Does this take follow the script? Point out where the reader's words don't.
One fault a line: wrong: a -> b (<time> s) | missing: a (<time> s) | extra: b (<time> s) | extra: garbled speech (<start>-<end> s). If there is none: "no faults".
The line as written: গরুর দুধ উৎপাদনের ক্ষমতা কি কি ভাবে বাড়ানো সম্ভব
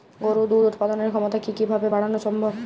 no faults